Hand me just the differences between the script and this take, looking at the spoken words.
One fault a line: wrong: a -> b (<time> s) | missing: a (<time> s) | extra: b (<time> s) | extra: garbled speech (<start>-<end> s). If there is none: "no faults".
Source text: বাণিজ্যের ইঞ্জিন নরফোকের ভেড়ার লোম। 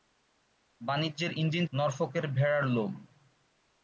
no faults